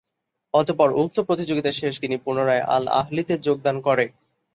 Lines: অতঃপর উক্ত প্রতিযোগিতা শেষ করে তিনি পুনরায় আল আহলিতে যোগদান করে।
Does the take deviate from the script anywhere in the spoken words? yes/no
yes